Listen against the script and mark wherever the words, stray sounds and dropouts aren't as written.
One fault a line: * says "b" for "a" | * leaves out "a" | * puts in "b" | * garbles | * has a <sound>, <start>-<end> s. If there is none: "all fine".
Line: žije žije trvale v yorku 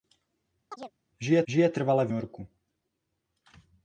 * has a chirp, 0.7-0.9 s